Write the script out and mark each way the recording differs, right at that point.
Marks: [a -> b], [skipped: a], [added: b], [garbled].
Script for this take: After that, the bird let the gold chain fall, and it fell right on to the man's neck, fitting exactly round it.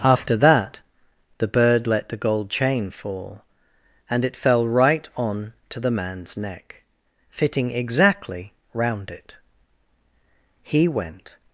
After that, the bird let the gold chain fall, and it fell right on to the man's neck, fitting exactly round it. [added: He went]